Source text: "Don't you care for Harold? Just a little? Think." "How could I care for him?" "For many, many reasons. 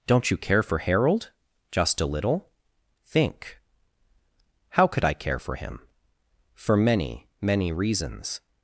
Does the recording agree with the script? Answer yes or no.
yes